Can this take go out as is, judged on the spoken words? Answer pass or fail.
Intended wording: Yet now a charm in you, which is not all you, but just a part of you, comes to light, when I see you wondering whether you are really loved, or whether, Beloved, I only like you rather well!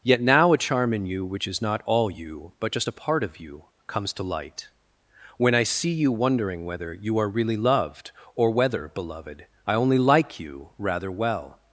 pass